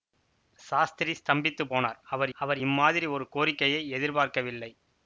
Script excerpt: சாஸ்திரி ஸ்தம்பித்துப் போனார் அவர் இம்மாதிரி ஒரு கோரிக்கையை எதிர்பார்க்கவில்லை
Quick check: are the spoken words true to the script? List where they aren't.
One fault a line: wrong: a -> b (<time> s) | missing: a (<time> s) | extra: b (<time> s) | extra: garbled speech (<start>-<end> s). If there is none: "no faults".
extra: அவர் (2.4 s)